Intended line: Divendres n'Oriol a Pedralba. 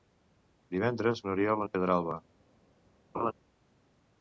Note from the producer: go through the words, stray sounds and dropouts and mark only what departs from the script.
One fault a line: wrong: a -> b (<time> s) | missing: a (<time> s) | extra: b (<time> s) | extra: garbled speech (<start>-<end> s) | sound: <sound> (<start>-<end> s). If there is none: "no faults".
sound: laugh (3.1-3.3 s)